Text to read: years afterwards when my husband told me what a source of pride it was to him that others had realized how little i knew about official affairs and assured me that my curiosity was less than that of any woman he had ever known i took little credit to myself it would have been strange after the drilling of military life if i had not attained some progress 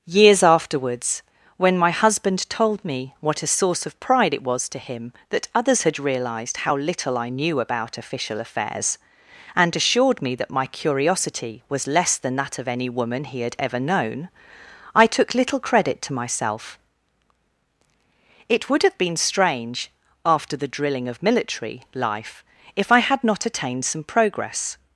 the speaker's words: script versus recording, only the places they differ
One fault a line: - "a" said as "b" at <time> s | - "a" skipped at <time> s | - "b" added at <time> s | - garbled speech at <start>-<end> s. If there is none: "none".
none